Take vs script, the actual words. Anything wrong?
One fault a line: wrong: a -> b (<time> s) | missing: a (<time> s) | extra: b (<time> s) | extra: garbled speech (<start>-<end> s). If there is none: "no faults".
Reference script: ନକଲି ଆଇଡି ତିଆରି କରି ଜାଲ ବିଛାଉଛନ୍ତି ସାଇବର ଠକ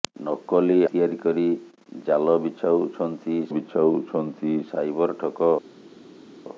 missing: ଆଇଡି (0.8 s)
extra: ବିଛାଉଛନ୍ତି (3.5 s)